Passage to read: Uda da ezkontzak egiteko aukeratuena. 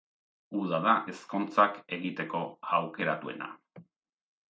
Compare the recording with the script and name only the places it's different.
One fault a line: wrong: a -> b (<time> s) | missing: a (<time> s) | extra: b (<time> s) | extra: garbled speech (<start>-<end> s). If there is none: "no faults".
no faults